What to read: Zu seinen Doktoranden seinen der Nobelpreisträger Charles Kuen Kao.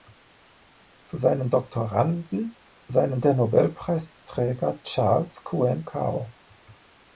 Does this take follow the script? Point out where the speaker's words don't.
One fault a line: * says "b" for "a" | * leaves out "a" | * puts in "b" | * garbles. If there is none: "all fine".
all fine